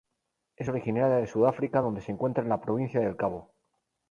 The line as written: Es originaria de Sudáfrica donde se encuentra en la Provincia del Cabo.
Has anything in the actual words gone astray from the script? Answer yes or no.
no